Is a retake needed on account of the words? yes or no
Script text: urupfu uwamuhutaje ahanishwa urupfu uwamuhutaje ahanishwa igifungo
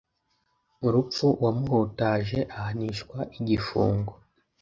yes